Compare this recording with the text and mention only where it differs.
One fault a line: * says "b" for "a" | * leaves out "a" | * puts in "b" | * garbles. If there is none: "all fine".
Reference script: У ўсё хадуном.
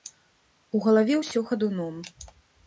* puts in "галаве"